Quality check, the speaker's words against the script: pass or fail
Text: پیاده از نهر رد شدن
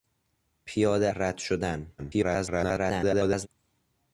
fail